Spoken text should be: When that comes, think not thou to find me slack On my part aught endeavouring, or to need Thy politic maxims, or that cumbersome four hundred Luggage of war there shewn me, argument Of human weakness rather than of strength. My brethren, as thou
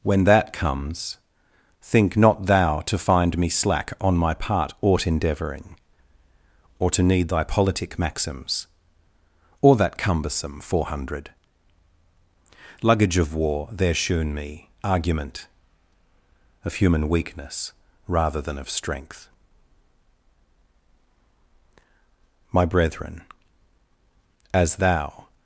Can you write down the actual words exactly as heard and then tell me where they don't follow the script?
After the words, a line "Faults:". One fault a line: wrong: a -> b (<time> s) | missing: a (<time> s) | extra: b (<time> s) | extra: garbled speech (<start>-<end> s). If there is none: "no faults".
When that comes, think not thou to find me slack On my part aught endeavouring, or to need Thy politic maxims, or that cumbersome four hundred Luggage of war there shewn me, argument Of human weakness rather than of strength. My brethren, as thou
Faults:
no faults